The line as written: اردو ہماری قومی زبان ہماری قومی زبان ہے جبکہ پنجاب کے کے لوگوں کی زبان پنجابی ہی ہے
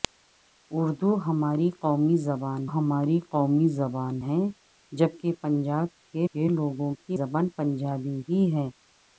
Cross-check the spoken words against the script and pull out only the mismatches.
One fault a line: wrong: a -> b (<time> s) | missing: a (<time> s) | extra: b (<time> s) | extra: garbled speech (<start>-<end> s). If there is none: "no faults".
no faults